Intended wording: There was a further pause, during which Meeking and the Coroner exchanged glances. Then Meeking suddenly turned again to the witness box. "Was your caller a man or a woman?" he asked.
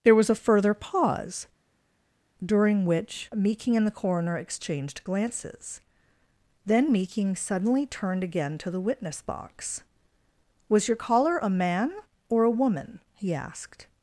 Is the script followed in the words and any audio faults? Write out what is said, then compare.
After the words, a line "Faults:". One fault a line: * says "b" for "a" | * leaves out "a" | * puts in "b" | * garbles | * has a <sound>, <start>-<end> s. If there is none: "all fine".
There was a further pause, during which Meeking and the Coroner exchanged glances. Then Meeking suddenly turned again to the witness box. "Was your caller a man or a woman?" he asked.
Faults:
all fine